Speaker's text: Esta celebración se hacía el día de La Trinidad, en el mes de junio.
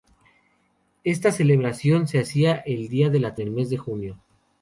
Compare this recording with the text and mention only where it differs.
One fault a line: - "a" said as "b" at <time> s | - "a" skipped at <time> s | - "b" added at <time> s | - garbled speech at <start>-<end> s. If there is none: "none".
- "Trinidad en" skipped at 3.4 s